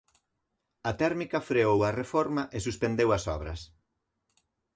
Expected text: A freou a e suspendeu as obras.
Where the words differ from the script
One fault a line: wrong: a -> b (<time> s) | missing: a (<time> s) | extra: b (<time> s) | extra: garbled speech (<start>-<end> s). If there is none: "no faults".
extra: térmica (1.0 s)
extra: reforma (2.0 s)